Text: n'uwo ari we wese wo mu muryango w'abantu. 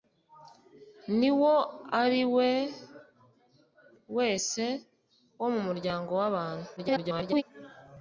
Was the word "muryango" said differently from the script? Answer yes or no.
no